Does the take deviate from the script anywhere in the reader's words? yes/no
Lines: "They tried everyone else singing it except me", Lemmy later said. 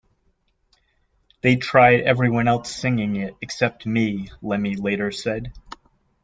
no